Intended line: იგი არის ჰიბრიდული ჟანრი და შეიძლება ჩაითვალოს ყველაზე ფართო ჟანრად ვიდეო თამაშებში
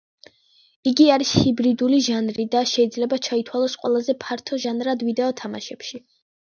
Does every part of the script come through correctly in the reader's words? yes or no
yes